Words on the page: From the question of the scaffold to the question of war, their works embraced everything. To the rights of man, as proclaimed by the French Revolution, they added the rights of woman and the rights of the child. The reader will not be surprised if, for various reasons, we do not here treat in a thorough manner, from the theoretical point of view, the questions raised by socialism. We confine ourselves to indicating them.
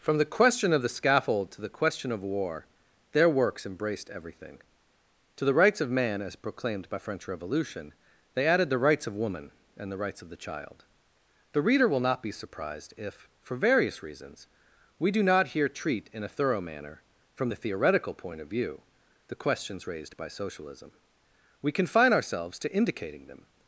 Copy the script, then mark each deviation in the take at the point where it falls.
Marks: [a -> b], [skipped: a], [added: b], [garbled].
From the question of the scaffold to the question of war, their works embraced everything. To the rights of man, as proclaimed by [skipped: the] French Revolution, they added the rights of woman and the rights of the child. The reader will not be surprised if, for various reasons, we do not here treat in a thorough manner, from the theoretical point of view, the questions raised by socialism. We confine ourselves to indicating them.